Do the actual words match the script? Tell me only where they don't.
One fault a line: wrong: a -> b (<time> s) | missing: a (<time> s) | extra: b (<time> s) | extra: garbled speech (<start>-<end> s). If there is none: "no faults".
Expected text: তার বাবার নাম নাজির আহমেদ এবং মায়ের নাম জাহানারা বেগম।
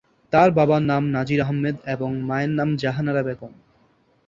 no faults